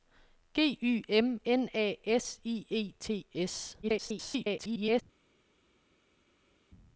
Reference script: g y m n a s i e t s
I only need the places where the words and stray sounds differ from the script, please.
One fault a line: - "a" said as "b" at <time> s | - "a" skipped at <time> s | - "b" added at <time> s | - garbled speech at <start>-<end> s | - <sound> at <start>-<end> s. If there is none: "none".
- garbled speech at 3.8-5.0 s